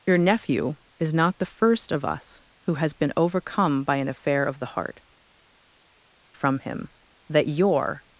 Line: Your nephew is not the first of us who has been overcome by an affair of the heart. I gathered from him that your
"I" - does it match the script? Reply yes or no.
no